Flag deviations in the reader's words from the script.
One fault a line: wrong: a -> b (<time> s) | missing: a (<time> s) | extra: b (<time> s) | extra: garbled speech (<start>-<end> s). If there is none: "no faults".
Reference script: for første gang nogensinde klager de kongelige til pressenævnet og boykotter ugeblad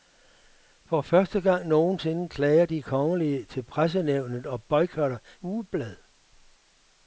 no faults